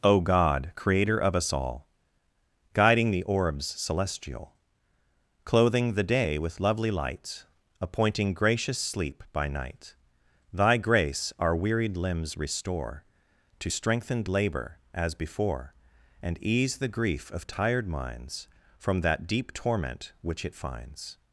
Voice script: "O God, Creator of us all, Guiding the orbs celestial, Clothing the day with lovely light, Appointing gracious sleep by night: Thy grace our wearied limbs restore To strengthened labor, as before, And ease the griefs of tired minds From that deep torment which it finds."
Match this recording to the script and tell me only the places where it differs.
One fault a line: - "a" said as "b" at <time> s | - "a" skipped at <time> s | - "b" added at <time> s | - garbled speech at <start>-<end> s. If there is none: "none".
- "griefs" said as "grief" at 16.9 s